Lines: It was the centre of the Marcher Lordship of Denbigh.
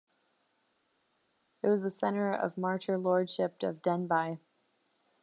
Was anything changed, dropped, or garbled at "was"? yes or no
no